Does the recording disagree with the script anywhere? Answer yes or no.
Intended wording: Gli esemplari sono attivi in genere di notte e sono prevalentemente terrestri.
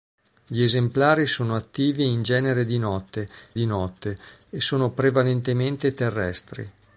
yes